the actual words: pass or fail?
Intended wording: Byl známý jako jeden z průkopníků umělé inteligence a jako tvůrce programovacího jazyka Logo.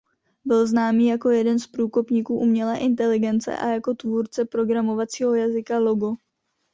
pass